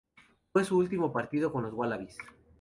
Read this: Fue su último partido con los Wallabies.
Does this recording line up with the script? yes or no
yes